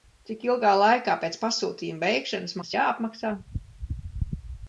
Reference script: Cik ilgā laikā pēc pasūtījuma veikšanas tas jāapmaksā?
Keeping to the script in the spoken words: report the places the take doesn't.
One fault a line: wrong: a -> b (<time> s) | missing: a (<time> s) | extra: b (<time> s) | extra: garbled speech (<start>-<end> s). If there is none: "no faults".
no faults